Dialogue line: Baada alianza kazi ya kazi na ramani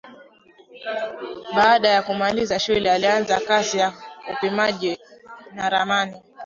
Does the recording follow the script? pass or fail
fail